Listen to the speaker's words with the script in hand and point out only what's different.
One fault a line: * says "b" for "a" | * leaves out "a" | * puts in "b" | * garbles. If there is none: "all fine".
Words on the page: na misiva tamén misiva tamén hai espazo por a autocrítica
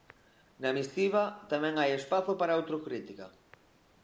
* leaves out "misiva tamén"
* says "para" for "por"